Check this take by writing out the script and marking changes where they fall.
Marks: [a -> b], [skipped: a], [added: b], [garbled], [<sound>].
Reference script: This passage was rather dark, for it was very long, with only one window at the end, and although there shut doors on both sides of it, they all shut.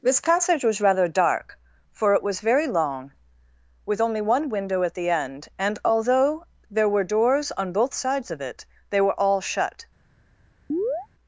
This passage was rather dark, for it was very long, with only one window at the end, and although there [shut -> were] doors on both sides of it, they [added: were] all shut. [chirp]